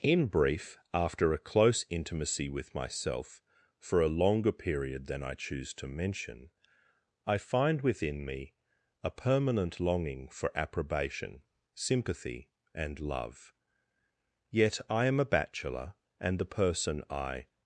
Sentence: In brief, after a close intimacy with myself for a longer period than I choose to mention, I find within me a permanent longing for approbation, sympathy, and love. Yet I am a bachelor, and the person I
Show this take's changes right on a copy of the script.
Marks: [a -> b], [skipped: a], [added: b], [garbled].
In brief, after a close intimacy with myself for a longer period than I choose to mention, I find within me a permanent longing for approbation, sympathy, and love. Yet I am a bachelor, and the person I